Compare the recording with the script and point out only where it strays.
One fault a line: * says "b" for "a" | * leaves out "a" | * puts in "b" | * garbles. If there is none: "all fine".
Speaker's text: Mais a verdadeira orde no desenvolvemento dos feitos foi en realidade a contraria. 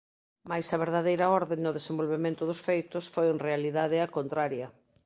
all fine